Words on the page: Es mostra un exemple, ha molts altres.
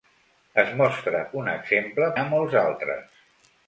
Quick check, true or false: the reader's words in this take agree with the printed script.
true